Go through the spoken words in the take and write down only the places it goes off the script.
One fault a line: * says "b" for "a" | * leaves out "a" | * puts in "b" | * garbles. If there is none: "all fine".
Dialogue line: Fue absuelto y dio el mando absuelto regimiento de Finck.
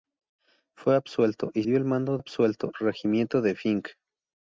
all fine